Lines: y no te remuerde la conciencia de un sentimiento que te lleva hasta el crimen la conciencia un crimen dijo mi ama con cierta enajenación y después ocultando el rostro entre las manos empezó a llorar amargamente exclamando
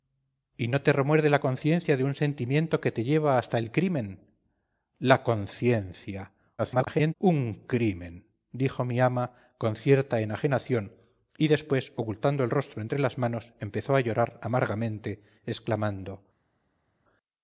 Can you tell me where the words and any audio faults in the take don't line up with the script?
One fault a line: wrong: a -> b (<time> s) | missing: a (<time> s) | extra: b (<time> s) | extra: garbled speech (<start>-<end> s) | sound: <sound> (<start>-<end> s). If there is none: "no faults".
extra: garbled speech (6.6-7.1 s)